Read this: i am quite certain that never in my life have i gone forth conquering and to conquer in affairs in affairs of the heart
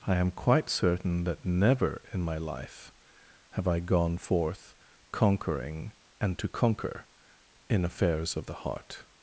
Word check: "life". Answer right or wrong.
right